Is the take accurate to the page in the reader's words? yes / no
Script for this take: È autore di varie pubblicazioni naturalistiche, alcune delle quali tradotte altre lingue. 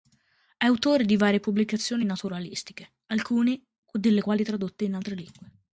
no